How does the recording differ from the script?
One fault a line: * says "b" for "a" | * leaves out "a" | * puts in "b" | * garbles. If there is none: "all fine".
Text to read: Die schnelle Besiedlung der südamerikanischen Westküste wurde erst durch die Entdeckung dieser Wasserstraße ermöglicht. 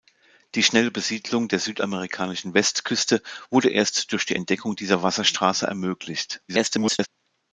* garbles